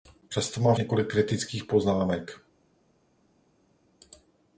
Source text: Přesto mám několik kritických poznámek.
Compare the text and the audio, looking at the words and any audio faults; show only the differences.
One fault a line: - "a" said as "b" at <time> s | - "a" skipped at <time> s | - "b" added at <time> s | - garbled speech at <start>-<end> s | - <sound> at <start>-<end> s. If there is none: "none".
none